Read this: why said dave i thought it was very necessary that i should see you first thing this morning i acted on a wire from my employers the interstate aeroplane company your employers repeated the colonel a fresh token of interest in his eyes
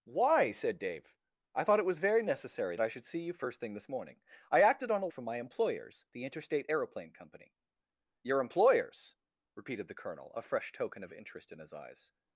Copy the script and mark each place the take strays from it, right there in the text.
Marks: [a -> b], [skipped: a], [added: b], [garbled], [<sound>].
why said dave i thought it was very necessary [skipped: that] i should see you first thing this morning i acted on a [skipped: wire] from my employers the interstate aeroplane company your employers repeated the colonel a fresh token of interest in his eyes